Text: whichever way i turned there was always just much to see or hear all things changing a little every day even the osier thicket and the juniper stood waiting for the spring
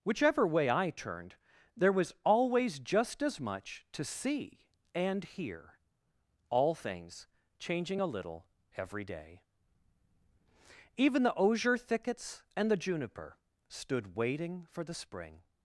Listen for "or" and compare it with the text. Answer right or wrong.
wrong